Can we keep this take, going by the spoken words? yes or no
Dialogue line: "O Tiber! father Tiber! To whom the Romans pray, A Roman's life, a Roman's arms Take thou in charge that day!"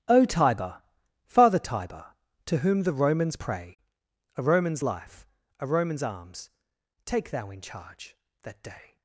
yes